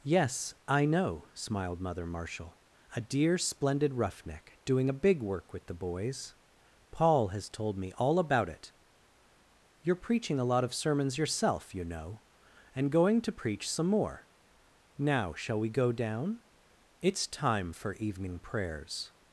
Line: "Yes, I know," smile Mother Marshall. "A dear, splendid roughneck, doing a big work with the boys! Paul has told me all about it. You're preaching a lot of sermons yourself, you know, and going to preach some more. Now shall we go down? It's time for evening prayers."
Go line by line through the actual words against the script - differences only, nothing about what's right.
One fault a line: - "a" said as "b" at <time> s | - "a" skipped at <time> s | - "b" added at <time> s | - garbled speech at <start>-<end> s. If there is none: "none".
- "smile" said as "smiled" at 1.4 s